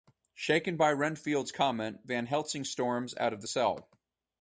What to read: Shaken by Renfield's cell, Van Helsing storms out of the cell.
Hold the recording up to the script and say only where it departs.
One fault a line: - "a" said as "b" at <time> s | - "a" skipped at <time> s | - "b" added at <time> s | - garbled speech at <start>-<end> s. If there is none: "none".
- "cell" said as "comment" at 1.5 s